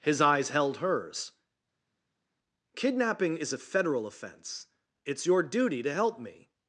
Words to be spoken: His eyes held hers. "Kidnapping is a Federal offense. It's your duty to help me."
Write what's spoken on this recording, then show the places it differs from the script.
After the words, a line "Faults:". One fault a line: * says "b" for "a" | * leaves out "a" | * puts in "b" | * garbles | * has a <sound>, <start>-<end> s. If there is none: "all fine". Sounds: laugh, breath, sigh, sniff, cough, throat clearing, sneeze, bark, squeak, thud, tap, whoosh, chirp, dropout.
His eyes held hers. "Kidnapping is a Federal offense. It's your duty to help me."
Faults:
all fine